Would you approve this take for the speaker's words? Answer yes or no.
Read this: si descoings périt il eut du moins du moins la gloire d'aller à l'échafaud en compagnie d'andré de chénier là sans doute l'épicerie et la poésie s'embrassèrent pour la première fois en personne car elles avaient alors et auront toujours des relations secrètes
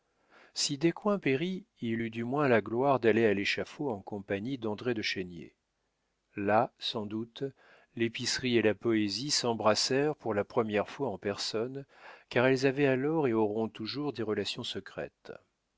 no